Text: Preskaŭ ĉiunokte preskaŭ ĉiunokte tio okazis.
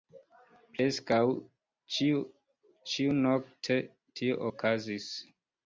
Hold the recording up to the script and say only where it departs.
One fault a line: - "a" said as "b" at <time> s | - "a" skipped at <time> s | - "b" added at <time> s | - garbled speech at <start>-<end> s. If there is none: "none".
- "preskaŭ ĉiunokte" skipped at 3.8 s